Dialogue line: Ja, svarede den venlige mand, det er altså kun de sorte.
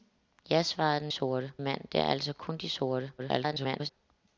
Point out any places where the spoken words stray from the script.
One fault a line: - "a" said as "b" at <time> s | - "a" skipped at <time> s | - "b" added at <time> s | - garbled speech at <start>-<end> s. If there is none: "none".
- "venlige" said as "sorte" at 1.1 s
- garbled speech at 3.2-3.9 s